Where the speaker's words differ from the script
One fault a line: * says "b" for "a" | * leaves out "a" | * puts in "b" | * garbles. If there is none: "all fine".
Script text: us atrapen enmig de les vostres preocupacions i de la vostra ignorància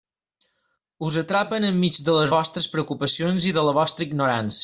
all fine